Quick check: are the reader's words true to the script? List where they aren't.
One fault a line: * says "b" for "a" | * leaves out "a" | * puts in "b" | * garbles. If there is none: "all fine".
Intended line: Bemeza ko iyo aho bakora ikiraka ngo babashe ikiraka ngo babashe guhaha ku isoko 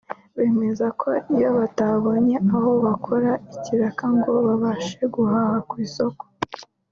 * puts in "batabonye"
* leaves out "ikiraka ngo babashe"